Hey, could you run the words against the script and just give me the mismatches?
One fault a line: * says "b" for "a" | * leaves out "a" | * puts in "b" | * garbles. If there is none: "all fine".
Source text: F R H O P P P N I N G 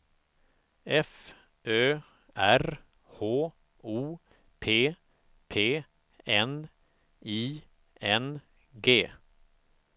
* puts in "Ö"
* leaves out "P"